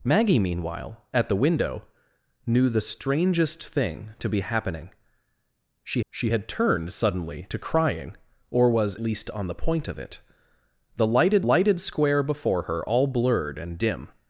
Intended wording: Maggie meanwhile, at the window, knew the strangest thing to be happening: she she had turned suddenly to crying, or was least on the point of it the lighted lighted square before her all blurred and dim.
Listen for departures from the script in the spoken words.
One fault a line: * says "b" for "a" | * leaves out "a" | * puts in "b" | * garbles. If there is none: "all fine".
all fine